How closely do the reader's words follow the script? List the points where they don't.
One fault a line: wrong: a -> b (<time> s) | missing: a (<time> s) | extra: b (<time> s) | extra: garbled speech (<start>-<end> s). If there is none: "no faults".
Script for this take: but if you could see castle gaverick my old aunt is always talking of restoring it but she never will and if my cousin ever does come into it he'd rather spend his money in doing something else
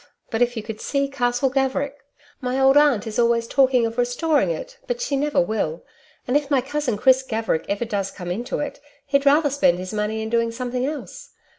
extra: chris gaverick (7.0 s)